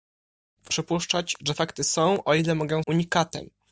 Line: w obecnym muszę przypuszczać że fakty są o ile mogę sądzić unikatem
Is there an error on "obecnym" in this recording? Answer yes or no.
yes